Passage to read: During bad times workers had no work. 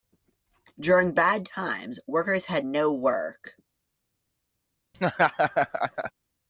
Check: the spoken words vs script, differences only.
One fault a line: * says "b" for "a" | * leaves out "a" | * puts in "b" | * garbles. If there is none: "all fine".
all fine